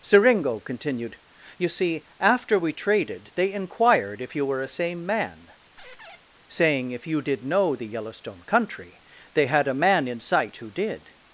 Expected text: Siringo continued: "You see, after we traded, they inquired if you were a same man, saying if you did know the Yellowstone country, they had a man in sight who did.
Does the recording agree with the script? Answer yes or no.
yes